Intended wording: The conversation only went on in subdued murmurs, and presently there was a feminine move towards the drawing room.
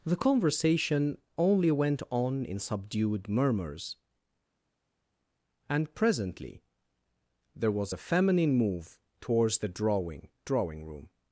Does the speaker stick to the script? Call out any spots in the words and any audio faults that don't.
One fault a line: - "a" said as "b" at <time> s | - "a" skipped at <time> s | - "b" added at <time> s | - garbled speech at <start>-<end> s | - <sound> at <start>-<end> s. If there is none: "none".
- "drawing" added at 10.5 s